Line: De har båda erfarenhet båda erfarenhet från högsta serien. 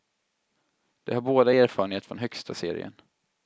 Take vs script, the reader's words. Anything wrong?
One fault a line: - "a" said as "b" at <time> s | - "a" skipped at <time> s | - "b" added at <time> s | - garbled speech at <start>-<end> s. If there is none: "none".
- "båda erfarenhet" skipped at 2.1 s